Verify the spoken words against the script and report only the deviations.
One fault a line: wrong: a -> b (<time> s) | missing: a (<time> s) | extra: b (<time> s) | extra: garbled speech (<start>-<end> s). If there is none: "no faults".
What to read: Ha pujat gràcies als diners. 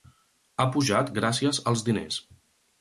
no faults